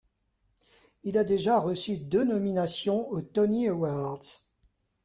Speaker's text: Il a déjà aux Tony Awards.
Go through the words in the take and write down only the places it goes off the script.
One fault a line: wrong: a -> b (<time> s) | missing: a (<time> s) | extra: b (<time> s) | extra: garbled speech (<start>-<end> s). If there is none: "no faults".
extra: reçu deux nominations (1.6 s)